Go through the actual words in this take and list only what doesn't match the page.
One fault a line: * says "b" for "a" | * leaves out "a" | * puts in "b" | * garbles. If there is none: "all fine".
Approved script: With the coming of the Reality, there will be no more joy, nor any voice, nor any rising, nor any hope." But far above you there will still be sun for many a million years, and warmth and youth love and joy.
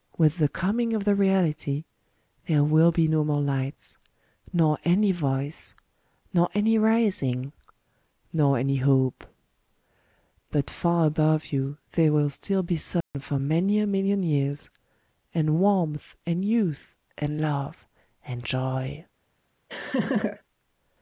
* says "lights" for "joy"
* puts in "and"